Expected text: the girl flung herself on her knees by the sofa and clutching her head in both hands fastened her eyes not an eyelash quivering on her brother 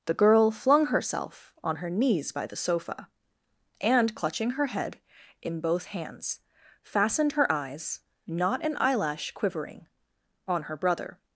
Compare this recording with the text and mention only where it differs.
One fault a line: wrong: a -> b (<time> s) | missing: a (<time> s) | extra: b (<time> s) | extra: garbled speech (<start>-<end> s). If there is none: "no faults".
no faults